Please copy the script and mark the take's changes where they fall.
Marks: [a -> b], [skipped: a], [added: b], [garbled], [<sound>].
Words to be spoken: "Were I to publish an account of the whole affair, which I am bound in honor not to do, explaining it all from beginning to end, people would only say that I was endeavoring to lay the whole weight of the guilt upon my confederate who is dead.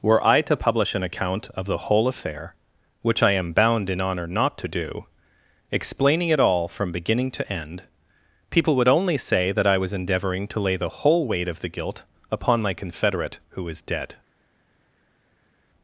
"Were I to publish an account of the whole affair, which I am bound in honor not to do, explaining it all from beginning to end, people would only say that I was endeavoring to lay the whole weight of the guilt upon my confederate who is dead.